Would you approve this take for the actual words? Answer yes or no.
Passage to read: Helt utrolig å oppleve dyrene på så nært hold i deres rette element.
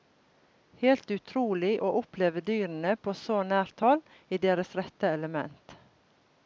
yes